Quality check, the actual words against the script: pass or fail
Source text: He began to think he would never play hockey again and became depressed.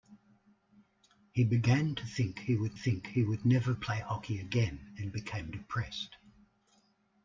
fail